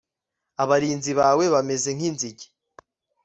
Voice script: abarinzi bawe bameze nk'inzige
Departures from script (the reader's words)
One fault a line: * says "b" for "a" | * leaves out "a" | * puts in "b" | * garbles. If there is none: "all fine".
all fine